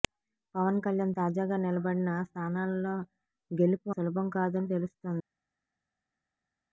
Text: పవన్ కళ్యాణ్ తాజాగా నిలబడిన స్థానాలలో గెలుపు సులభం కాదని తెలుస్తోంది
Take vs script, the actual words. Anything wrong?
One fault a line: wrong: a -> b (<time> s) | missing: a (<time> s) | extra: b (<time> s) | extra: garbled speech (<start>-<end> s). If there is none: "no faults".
no faults